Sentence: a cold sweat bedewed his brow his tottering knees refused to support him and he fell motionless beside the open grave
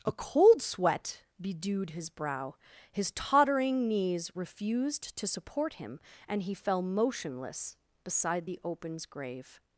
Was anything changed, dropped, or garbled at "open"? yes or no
yes